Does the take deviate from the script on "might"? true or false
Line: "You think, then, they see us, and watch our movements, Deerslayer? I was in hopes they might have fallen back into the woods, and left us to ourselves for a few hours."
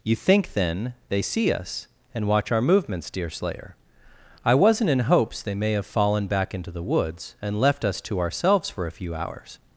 true